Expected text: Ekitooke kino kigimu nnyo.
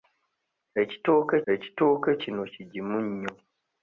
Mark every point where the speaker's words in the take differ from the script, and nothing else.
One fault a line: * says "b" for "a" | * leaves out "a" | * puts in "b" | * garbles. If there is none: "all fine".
* puts in "ekitooke"